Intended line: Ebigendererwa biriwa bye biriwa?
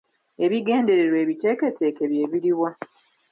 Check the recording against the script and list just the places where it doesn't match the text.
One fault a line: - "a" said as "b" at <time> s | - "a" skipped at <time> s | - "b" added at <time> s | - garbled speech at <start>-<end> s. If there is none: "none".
- "biriwa" said as "ebiteeketeeke" at 1.2 s